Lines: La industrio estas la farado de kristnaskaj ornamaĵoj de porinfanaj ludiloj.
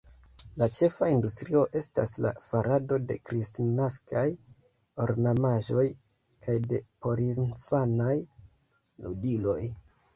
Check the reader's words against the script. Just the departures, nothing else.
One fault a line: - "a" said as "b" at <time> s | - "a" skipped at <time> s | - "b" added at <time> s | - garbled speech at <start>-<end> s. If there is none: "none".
- "ĉefa" added at 0.8 s
- "kaj" added at 6.5 s